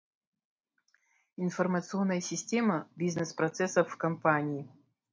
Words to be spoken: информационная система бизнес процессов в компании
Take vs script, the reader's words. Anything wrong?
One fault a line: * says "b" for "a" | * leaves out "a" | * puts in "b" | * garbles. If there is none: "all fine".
all fine